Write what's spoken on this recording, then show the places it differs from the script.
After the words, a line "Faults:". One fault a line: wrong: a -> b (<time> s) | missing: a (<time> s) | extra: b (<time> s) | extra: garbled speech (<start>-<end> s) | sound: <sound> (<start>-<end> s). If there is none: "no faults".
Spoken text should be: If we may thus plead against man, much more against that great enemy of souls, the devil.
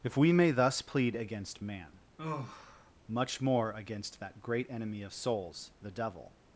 If we may thus plead against man, much more against that great enemy of souls, the devil.
Faults:
sound: sigh (2.2-2.9 s)